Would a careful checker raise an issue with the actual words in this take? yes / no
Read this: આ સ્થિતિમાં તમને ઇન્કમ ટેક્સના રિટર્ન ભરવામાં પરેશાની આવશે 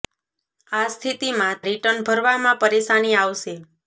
yes